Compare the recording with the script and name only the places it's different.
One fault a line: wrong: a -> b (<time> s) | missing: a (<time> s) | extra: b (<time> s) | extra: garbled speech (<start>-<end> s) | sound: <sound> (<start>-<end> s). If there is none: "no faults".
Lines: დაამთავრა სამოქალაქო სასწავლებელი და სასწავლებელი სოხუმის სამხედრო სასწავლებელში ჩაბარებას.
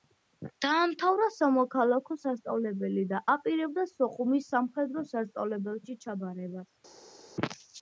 wrong: სასწავლებელი -> აპირებდა (3.3 s)